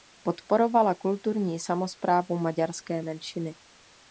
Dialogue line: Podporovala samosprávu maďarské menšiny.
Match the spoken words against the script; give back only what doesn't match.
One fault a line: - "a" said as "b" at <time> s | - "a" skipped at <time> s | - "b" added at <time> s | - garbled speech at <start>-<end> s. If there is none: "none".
- "kulturní" added at 0.9 s